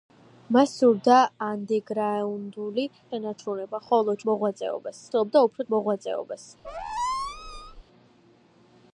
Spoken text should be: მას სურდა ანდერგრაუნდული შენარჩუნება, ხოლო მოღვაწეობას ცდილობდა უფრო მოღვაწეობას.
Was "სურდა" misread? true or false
false